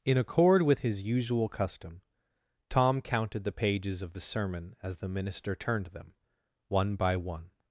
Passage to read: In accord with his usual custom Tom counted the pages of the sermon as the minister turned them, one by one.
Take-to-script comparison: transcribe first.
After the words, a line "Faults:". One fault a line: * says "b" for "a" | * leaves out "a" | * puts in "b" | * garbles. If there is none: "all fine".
In accord with his usual custom Tom counted the pages of the sermon as the minister turned them, one by one.
Faults:
all fine